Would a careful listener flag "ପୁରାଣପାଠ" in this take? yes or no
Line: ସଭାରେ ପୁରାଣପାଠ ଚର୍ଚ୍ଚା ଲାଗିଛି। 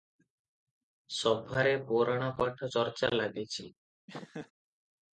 no